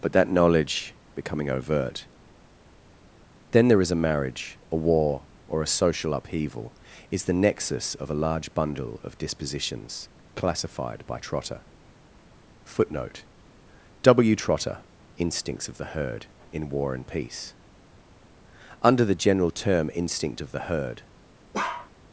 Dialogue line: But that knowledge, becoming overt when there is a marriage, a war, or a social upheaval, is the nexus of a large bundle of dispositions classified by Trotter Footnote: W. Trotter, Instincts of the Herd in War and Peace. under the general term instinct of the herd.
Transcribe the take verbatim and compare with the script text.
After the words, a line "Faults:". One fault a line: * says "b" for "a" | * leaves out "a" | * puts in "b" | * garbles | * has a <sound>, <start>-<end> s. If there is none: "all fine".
But that knowledge, becoming overt then there is a marriage, a war, or a social upheaval, is the nexus of a large bundle of dispositions classified by Trotter Footnote: W. Trotter, Instincts of the Herd in War and Peace. under the general term instinct of the herd.
Faults:
* says "then" for "when"
* has a bark, 21.5-21.9 s